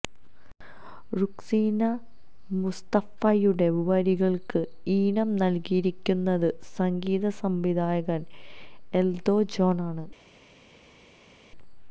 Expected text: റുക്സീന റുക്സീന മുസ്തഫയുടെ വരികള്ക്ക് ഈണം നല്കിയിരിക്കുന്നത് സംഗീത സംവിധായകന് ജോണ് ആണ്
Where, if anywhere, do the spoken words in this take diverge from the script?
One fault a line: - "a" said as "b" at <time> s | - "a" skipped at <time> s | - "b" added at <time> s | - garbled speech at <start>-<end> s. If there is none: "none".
- "റുക്സീന" skipped at 1.8 s
- "എല്ദോ" added at 8.9 s